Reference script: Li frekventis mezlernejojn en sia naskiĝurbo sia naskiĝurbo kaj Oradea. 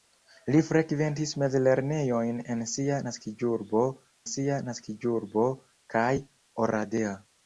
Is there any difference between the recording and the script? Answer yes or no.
no